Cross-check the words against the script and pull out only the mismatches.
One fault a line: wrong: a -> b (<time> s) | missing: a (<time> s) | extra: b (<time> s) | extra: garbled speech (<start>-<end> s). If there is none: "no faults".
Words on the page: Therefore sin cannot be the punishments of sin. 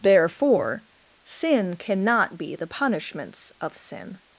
no faults